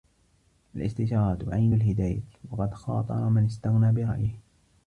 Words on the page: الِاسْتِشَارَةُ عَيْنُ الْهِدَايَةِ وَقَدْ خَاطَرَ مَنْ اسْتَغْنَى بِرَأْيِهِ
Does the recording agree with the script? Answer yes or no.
yes